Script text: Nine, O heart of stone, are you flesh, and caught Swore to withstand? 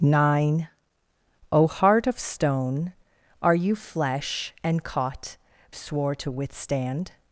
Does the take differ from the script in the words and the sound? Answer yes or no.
no